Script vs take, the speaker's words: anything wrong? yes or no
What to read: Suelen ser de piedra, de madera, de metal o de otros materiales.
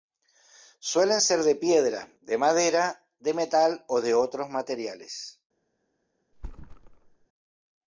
no